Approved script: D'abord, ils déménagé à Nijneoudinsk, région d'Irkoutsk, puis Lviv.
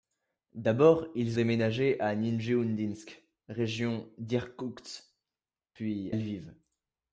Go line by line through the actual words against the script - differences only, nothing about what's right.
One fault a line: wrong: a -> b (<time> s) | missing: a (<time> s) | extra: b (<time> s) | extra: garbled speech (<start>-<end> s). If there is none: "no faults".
no faults